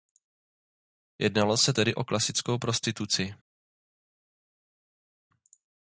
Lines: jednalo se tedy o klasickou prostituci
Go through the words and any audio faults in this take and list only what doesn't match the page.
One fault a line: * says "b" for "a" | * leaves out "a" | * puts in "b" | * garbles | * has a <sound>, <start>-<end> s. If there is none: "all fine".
all fine